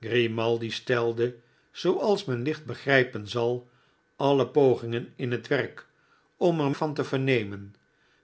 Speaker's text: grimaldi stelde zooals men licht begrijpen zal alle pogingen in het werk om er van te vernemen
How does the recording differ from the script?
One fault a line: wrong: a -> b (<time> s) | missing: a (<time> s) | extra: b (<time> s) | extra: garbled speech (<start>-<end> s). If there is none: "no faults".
no faults